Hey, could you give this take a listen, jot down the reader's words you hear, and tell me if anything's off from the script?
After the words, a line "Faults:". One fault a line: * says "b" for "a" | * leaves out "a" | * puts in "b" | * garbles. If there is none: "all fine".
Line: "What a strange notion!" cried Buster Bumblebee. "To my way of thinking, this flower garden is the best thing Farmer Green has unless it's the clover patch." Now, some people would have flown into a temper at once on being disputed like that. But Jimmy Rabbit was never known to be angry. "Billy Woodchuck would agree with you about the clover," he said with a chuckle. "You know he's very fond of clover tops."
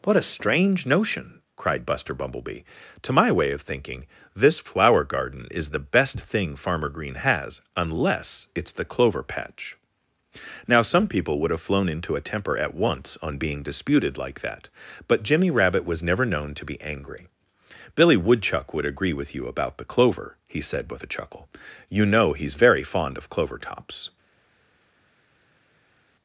"What a strange notion!" cried Buster Bumblebee. "To my way of thinking, this flower garden is the best thing Farmer Green has unless it's the clover patch." Now, some people would have flown into a temper at once on being disputed like that. But Jimmy Rabbit was never known to be angry. "Billy Woodchuck would agree with you about the clover," he said with a chuckle. "You know he's very fond of clover tops."
Faults:
all fine